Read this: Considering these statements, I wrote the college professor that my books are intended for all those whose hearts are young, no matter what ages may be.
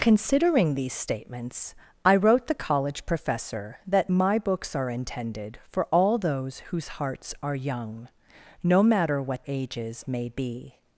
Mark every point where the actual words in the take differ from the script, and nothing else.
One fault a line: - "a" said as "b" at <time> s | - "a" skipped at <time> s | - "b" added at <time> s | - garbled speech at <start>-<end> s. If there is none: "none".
none